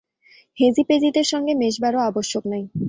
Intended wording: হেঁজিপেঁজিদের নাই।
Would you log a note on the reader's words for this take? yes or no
yes